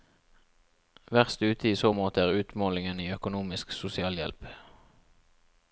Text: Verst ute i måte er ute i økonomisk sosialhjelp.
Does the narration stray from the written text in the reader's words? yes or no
yes